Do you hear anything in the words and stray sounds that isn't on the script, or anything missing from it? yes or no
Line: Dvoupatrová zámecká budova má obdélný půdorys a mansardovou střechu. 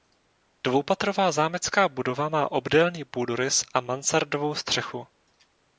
no